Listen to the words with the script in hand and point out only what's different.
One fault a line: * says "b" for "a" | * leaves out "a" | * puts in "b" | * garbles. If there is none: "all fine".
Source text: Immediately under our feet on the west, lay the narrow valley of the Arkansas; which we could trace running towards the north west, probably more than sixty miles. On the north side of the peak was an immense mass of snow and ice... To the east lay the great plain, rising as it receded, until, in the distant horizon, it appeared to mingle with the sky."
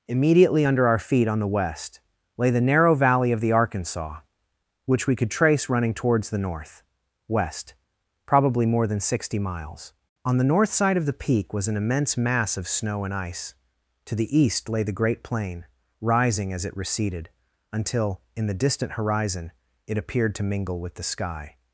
all fine